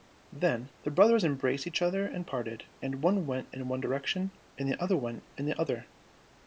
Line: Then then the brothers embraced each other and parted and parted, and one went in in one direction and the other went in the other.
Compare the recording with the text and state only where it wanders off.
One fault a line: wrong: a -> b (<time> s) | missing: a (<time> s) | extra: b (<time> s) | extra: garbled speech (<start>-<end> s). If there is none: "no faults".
missing: then (0.7 s)
missing: parted and (3.0 s)
missing: in (3.7 s)